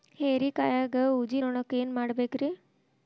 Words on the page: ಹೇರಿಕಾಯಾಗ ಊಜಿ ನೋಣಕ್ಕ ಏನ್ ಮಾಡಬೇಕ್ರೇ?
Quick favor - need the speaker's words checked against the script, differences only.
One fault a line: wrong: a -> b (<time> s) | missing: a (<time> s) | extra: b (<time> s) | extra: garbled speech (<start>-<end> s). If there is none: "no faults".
no faults